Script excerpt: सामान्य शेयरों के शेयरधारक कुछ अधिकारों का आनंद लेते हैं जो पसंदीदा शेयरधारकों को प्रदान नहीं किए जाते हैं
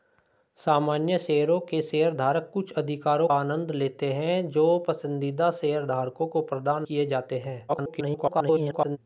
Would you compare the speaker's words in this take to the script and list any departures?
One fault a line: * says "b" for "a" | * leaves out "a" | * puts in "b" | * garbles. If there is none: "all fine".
* leaves out "का"
* leaves out "नहीं"
* garbles